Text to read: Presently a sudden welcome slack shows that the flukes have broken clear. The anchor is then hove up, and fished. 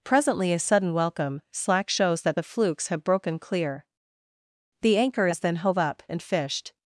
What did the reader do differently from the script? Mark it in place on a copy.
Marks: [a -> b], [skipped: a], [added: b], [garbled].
Presently a sudden welcome slack shows that the flukes have broken clear. The anchor is then hove up, and fished.